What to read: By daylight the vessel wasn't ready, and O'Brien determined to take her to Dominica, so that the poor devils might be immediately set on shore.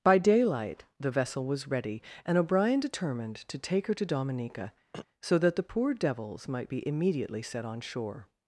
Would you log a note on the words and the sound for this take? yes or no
yes